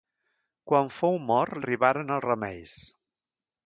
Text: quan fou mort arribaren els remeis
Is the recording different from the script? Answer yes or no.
no